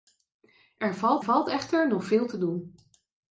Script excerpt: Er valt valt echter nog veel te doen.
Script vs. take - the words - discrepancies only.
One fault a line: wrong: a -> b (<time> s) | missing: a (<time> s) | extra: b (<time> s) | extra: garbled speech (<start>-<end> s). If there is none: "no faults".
no faults